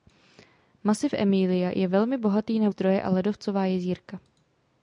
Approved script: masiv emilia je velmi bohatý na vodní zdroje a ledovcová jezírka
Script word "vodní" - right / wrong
wrong